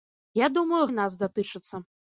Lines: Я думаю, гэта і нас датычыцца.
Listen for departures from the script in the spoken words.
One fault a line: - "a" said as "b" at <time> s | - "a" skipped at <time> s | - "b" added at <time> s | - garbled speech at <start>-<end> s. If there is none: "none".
- "гэта" skipped at 0.8 s